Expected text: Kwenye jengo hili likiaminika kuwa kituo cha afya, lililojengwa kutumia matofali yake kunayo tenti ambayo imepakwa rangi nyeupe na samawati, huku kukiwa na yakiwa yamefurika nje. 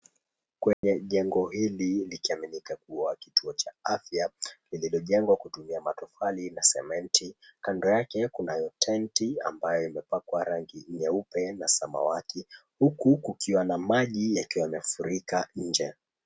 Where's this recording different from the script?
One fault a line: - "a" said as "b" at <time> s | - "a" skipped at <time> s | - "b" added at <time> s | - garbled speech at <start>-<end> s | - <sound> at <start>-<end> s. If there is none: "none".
- dropout at 0.7-0.8 s
- "na sementi Kando" added at 6.5 s
- "maji" added at 13.8 s